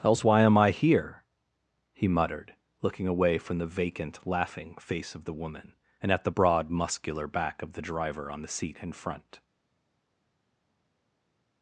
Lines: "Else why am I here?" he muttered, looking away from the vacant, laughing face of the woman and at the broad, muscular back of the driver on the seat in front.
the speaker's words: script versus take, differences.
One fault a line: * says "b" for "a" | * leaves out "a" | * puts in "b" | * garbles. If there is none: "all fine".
all fine